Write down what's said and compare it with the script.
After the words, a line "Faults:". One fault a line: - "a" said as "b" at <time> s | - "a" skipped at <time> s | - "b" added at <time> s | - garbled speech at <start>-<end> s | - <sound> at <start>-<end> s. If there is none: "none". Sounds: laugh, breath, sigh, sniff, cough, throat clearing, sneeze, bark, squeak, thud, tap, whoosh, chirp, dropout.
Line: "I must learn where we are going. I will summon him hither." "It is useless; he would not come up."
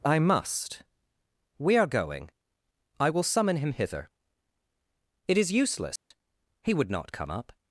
"I must we are going. I will summon him hither." "It is useless; he would not come up."
Faults:
- "learn where" skipped at 0.8 s
- dropout at 6.0-6.1 s